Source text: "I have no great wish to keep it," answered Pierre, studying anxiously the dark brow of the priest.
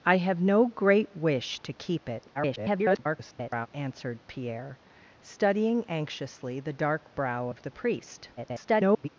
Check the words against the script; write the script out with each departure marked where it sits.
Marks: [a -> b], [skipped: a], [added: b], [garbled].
"I have no great wish to keep it," [garbled] answered Pierre, studying anxiously the dark brow of the priest. [garbled]